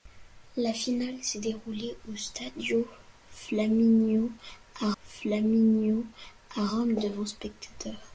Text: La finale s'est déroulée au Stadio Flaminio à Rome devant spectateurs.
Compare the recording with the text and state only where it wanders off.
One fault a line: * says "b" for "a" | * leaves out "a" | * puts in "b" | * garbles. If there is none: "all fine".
* puts in "Flaminio à"